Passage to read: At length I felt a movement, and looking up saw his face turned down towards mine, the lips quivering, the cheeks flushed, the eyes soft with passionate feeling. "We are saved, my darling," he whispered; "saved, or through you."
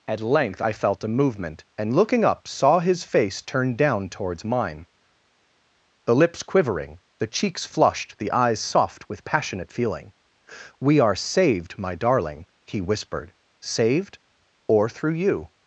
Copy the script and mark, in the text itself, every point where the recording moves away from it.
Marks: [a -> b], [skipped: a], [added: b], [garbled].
At length I felt a movement, and looking up saw his face turned down towards mine, the lips quivering, the cheeks flushed, the eyes soft with passionate feeling. "We are saved, my darling," he whispered; "saved, or through you."